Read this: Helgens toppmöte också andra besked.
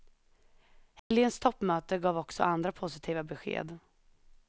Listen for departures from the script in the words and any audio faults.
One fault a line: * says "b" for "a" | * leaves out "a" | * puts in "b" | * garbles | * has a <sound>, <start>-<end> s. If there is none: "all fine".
* has a dropout, 1.0-1.1 s
* puts in "gav"
* puts in "positiva"